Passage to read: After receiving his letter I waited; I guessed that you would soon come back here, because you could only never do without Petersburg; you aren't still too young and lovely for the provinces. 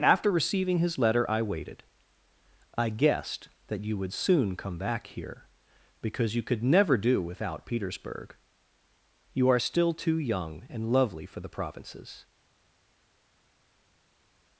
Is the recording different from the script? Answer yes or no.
yes